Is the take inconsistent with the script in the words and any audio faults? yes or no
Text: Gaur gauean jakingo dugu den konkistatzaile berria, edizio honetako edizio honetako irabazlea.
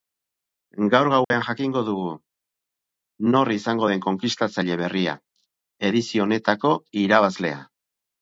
yes